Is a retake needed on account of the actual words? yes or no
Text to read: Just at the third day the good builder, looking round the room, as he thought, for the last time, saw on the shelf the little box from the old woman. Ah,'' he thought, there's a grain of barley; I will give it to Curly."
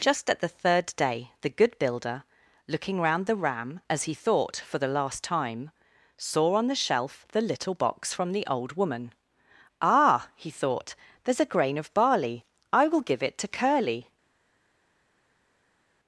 yes